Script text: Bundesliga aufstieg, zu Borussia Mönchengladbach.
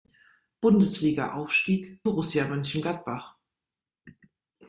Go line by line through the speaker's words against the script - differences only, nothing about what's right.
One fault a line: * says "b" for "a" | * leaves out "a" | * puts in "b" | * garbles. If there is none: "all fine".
* leaves out "zu"